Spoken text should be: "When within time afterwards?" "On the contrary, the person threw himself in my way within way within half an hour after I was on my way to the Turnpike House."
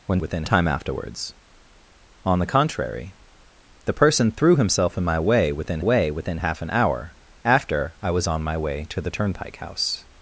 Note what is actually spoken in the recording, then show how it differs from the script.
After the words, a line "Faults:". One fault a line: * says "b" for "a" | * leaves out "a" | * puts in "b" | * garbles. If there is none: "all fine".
"When within time afterwards?" "On the contrary, the person threw himself in my way within way within half an hour after I was on my way to the Turnpike House."
Faults:
all fine